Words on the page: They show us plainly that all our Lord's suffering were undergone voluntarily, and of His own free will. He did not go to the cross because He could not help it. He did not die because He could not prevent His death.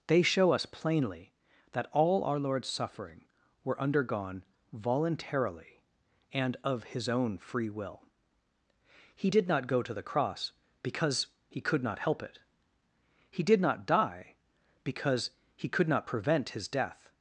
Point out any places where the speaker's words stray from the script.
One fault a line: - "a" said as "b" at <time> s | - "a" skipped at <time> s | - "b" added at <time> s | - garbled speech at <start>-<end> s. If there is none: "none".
none